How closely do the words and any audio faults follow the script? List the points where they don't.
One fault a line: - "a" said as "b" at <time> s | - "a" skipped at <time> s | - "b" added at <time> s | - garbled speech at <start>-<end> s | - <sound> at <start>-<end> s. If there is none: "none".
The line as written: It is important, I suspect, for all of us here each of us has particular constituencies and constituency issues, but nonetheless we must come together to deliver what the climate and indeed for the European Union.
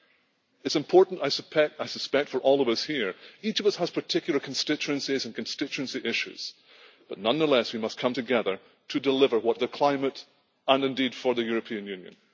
none